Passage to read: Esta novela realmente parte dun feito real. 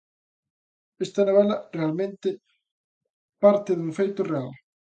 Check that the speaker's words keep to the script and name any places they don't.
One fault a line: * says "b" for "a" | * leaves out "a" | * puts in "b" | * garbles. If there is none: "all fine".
all fine